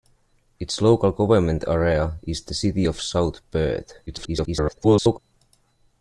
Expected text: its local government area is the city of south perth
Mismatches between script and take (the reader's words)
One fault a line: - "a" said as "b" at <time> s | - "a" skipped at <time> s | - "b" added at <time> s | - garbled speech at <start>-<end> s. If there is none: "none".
- garbled speech at 4.1-5.2 s